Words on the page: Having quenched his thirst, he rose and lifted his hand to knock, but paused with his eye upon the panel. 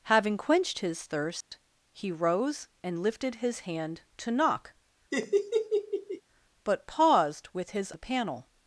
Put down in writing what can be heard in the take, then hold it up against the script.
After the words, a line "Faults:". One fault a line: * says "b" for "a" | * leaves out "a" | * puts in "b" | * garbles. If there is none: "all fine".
Having quenched his thirst, he rose and lifted his hand to knock, but paused with his the panel.
Faults:
* leaves out "eye upon"